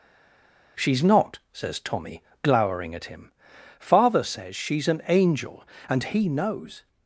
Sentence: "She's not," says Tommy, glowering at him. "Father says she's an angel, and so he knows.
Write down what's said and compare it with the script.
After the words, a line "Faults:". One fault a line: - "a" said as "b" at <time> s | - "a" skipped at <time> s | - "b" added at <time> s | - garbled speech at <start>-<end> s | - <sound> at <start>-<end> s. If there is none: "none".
"She's not," says Tommy, glowering at him. "Father says she's an angel, and he knows.
Faults:
- "so" skipped at 6.0 s